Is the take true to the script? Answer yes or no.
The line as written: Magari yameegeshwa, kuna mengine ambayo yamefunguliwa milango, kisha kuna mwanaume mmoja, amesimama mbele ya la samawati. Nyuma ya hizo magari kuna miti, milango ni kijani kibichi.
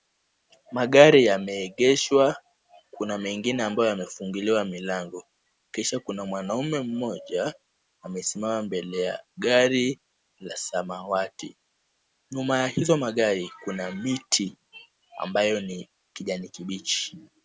no